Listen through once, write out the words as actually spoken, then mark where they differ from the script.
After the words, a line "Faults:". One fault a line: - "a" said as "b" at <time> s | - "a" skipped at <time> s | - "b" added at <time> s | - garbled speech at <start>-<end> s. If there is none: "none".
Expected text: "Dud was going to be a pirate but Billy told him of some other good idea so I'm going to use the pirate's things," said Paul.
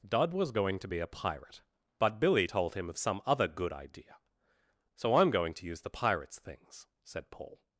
"Dud was going to be a pirate but Billy told him of some other good idea so I'm going to use the pirate's things," said Paul.
Faults:
none